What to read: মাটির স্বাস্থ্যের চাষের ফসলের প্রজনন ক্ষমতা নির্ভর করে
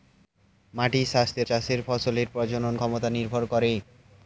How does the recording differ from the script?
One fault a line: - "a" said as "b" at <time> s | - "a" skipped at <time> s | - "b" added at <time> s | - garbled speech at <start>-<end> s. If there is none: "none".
none